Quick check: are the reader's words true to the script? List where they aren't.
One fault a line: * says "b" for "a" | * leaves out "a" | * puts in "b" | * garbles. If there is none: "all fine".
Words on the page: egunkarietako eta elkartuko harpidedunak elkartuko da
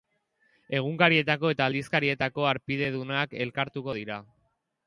* says "aldizkarietako" for "elkartuko"
* says "dira" for "da"